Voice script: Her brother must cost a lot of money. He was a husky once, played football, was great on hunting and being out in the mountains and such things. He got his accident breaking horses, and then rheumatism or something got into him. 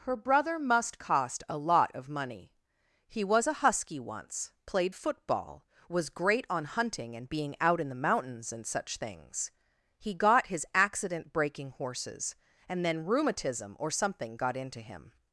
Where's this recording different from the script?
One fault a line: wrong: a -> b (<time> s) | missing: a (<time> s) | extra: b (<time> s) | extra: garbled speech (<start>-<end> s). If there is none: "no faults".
no faults